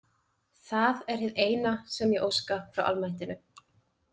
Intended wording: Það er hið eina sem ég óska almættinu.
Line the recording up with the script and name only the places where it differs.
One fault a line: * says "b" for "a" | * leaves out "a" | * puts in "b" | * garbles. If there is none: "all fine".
* puts in "frá"